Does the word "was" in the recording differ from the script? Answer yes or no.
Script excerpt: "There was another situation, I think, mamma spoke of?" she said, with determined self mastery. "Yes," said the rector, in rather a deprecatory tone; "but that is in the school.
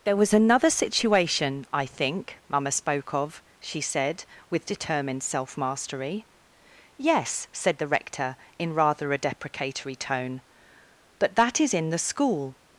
no